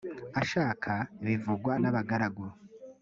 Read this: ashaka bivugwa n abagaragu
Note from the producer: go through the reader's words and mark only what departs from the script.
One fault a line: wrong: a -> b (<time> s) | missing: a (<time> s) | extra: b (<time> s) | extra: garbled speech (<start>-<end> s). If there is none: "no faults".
no faults